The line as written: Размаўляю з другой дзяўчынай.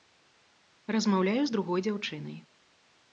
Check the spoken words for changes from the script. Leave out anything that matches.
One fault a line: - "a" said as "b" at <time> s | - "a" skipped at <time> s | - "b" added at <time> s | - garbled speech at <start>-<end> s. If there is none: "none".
none